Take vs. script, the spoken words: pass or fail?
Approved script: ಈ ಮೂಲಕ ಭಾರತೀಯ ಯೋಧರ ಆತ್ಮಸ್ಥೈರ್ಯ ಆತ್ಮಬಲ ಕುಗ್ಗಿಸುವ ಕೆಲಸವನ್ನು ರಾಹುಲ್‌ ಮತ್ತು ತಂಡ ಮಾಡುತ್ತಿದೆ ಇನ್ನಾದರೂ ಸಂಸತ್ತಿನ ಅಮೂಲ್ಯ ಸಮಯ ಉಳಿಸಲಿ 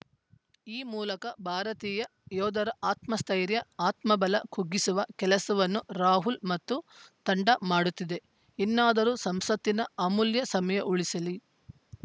pass